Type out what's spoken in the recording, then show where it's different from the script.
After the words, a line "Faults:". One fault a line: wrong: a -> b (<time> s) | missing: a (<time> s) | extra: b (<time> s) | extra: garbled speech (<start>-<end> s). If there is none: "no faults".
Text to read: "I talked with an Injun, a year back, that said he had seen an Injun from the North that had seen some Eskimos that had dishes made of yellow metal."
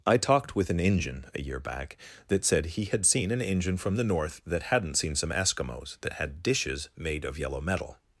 "I talked with an Injun, a year back, that said he had seen an Injun from the North that hadn't seen some Eskimos that had dishes made of yellow metal."
Faults:
wrong: had -> hadn't (4.6 s)